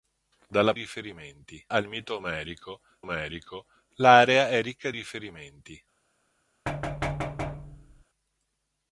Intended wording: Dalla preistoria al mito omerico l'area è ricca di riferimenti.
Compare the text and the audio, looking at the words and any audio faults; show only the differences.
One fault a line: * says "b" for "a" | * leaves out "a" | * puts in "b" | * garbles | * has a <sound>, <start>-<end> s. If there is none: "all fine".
* says "riferimenti" for "preistoria"
* puts in "omerico"
* leaves out "di"
* has a thud, 6.7-8.0 s